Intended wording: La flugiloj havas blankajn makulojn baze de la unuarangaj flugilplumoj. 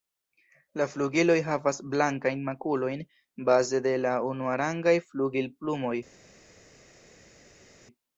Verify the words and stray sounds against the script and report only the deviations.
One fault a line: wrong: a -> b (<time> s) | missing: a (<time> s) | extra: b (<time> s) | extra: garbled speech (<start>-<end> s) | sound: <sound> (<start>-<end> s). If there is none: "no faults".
no faults